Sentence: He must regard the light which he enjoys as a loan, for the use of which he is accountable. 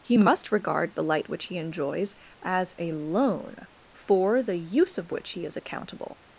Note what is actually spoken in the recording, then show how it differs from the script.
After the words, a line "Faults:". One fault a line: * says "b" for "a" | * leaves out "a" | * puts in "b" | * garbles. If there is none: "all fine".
He must regard the light which he enjoys as a loan, for the use of which he is accountable.
Faults:
all fine